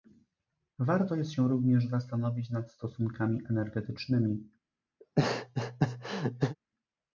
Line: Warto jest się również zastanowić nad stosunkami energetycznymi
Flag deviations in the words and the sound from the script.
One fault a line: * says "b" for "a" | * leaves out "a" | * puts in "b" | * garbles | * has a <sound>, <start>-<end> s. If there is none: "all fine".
* has a laugh, 5.0-6.6 s